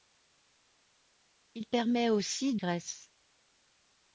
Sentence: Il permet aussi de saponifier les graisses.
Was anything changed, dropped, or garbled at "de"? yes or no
yes